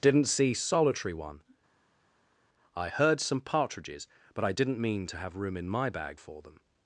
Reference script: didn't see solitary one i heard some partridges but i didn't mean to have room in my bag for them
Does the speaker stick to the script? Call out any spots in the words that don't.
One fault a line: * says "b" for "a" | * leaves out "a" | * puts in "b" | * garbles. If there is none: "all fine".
all fine